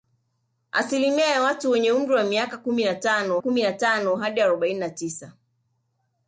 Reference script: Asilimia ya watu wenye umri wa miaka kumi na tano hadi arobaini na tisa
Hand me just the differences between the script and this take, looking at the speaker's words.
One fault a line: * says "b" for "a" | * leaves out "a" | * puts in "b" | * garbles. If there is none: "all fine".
* puts in "kumi na tano"